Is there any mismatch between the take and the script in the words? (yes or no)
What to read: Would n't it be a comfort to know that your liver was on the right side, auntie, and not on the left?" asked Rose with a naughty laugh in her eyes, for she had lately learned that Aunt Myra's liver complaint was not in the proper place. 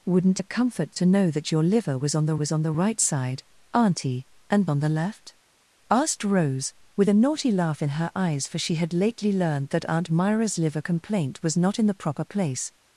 yes